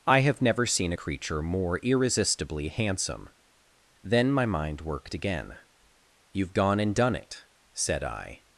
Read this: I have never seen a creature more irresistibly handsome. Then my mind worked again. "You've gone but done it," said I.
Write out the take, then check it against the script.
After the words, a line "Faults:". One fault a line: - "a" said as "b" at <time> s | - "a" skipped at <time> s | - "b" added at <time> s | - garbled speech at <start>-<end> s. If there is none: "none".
I have never seen a creature more irresistibly handsome. Then my mind worked again. "You've gone and done it," said I.
Faults:
- "but" said as "and" at 6.8 s